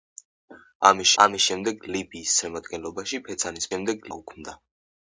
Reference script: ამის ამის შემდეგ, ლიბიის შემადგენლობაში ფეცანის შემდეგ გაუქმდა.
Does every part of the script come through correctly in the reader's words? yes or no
yes